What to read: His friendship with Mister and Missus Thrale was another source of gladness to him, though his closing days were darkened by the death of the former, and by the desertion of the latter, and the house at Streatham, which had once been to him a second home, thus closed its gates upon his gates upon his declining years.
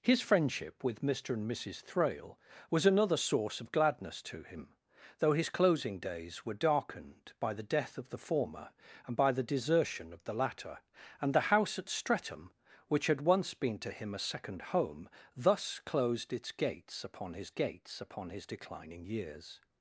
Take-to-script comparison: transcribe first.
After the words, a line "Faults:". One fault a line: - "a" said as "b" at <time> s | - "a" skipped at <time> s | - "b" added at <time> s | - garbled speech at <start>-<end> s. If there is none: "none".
His friendship with Mister and Missus Thrale was another source of gladness to him, though his closing days were darkened by the death of the former, and by the desertion of the latter, and the house at Streatham, which had once been to him a second home, thus closed its gates upon his gates upon his declining years.
Faults:
none